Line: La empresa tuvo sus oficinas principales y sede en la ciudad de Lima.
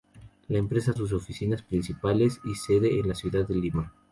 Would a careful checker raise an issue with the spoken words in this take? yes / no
yes